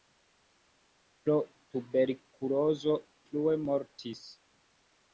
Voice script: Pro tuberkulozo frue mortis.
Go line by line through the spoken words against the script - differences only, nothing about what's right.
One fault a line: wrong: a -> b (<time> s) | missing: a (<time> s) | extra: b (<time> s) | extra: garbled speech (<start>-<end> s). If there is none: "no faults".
no faults